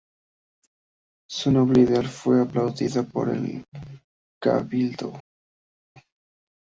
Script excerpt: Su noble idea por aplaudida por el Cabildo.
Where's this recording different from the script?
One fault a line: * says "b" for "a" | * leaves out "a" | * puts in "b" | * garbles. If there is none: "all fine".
* says "fue" for "por"